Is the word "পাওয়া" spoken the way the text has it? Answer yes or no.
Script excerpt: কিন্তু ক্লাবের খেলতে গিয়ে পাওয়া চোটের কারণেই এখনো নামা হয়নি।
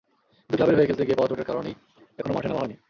yes